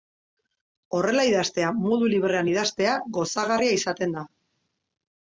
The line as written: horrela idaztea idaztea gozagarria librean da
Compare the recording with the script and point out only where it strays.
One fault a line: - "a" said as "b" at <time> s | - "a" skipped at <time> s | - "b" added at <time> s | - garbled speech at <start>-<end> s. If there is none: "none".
- "modu librean" added at 1.8 s
- "librean" said as "izaten" at 3.8 s